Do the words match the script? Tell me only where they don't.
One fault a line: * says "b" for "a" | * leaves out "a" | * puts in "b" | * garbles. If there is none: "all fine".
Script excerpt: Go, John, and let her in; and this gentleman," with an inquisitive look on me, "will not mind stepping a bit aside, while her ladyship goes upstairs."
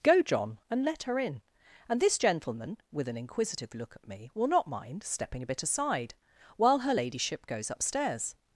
* says "at" for "on"